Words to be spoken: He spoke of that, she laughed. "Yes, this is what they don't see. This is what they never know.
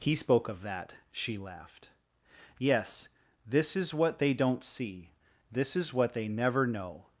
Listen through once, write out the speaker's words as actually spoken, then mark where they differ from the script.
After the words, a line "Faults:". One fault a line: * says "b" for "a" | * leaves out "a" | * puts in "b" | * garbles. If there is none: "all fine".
He spoke of that, she laughed. "Yes, this is what they don't see. This is what they never know.
Faults:
all fine